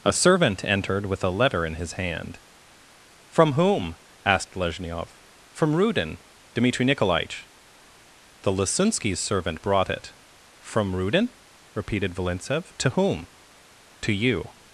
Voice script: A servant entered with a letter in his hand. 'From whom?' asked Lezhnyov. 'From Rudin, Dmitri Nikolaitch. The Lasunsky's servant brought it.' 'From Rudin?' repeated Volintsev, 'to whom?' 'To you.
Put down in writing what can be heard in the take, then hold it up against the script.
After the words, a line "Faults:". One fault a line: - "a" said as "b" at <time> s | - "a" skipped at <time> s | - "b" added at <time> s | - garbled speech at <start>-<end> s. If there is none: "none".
A servant entered with a letter in his hand. 'From whom?' asked Lezhnyov. 'From Rudin, Dmitri Nikolaitch. The Lasunsky's servant brought it.' 'From Rudin?' repeated Volintsev, 'to whom?' 'To you.
Faults:
none